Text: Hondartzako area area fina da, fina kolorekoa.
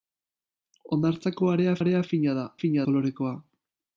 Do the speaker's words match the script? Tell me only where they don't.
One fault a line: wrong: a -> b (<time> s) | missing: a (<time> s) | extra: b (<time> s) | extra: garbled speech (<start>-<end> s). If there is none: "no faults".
no faults